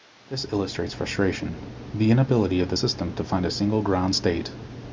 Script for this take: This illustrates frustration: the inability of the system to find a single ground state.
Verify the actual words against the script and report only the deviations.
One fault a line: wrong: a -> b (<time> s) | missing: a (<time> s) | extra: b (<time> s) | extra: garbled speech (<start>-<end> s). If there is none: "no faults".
no faults